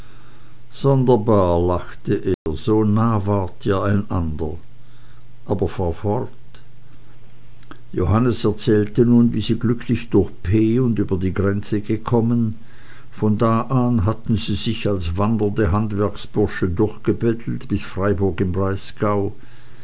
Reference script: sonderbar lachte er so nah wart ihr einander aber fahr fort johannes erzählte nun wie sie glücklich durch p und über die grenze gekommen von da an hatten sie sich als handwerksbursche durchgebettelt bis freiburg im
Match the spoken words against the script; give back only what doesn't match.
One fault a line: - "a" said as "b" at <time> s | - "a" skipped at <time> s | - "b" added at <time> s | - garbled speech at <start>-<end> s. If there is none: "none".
- "wandernde" added at 15.2 s